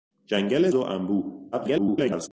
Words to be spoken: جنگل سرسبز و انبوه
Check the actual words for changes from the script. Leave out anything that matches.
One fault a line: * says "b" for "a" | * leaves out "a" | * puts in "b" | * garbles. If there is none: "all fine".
* leaves out "سرسبز"
* garbles